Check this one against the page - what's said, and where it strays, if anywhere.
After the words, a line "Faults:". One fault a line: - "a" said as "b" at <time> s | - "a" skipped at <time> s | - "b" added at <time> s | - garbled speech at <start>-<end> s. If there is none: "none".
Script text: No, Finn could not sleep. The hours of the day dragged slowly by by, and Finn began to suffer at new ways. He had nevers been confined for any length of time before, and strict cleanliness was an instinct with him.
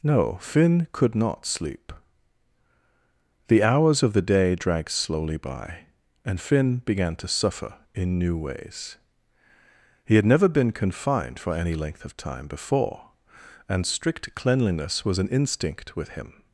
No, Finn could not sleep. The hours of the day dragged slowly by, and Finn began to suffer in new ways. He had never been confined for any length of time before, and strict cleanliness was an instinct with him.
Faults:
- "by" skipped at 5.8 s
- "at" said as "in" at 7.9 s
- "nevers" said as "never" at 10.2 s